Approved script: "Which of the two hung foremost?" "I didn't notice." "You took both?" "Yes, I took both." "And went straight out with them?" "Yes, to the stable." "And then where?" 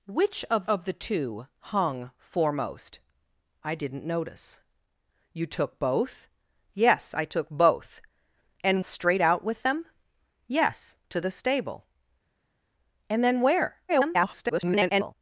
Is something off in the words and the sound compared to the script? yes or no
yes